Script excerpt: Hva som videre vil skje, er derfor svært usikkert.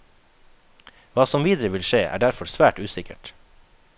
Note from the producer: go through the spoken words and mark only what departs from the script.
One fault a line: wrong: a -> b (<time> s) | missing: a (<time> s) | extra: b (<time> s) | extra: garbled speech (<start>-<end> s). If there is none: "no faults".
no faults